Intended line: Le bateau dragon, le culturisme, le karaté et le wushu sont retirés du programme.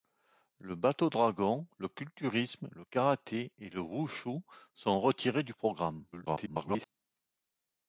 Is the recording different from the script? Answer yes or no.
yes